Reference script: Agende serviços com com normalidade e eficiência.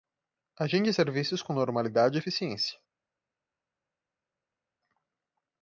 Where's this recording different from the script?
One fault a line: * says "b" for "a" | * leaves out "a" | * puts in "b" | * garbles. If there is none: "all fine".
* leaves out "com"